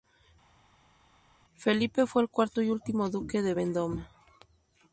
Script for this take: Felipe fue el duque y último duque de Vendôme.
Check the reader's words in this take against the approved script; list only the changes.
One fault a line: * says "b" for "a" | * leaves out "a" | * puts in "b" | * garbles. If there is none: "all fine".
* says "cuarto" for "duque"